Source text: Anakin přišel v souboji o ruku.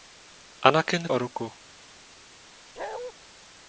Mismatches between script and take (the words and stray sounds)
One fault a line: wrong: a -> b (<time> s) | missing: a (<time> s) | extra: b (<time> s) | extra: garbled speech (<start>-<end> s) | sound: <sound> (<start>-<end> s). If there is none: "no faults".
missing: přišel v souboji (1.1 s)
sound: bark (2.8-3.1 s)